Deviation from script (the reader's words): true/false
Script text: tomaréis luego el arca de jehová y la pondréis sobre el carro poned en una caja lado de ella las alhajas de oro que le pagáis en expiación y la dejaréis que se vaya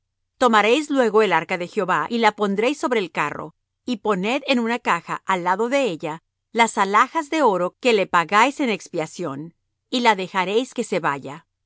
true